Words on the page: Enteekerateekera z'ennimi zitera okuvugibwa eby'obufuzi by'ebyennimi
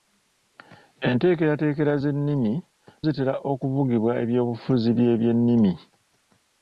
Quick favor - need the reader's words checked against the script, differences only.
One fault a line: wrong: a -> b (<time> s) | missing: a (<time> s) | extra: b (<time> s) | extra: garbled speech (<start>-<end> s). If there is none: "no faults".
no faults